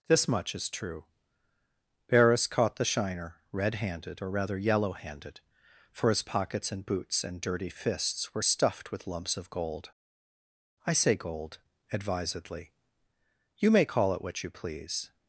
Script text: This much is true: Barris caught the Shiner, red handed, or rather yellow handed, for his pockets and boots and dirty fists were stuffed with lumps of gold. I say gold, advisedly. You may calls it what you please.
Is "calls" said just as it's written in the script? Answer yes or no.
no